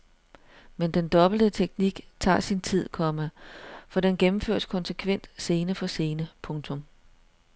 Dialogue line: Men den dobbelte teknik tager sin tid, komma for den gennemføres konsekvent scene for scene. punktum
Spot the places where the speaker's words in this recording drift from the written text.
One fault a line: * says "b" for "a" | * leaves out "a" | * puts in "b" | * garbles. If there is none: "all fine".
all fine